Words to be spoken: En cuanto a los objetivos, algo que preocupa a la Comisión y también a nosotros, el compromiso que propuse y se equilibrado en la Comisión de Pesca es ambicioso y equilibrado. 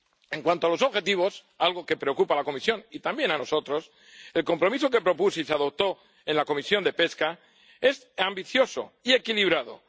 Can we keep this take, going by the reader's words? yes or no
no